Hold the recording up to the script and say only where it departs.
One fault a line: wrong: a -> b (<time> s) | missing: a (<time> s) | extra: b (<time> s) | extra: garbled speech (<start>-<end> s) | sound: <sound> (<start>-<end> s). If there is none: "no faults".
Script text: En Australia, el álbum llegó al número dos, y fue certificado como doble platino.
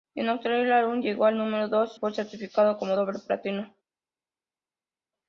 missing: y (2.0 s)